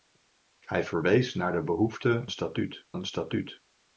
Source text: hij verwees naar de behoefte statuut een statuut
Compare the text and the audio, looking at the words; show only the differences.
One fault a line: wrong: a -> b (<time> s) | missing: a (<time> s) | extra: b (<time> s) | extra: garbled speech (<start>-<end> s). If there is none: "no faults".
no faults